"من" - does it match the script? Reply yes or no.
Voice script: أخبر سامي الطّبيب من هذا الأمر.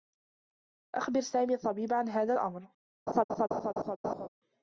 no